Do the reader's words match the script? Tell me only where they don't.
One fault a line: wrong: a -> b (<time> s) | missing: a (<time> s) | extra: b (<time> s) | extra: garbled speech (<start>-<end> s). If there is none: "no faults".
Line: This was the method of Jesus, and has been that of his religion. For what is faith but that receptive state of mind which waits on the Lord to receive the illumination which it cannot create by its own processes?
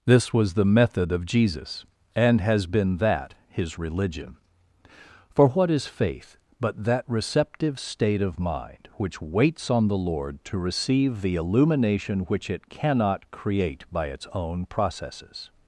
missing: of (3.4 s)